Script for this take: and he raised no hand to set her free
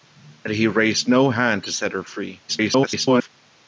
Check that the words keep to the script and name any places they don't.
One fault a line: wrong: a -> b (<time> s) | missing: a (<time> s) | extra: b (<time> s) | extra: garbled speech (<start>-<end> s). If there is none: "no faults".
extra: garbled speech (2.5-3.3 s)